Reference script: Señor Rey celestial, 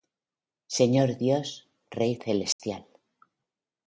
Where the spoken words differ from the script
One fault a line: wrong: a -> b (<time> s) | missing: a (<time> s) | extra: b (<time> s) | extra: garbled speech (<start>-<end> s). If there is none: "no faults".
extra: Dios (1.2 s)